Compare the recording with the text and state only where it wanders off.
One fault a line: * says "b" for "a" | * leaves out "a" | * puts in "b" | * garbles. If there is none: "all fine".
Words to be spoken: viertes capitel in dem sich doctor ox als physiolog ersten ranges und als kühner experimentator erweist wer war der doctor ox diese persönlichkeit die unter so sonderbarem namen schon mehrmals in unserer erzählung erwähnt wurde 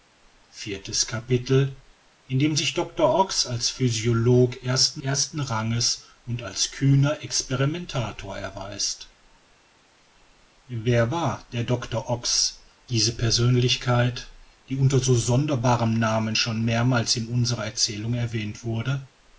* puts in "ersten"